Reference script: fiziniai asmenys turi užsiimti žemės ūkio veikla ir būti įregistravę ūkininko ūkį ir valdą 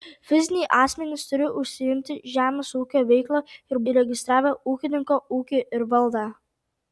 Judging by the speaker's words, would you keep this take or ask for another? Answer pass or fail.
fail